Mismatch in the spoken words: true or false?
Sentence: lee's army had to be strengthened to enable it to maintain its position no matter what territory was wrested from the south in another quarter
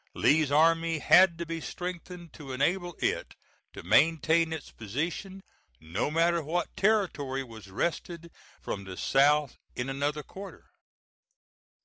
false